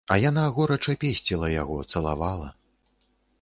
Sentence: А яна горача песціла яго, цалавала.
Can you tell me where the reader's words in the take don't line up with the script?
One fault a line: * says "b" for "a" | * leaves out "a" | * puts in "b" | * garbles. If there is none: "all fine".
all fine